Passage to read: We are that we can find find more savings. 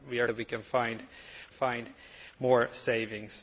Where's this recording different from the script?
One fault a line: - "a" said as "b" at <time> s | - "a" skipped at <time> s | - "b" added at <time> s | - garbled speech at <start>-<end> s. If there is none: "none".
none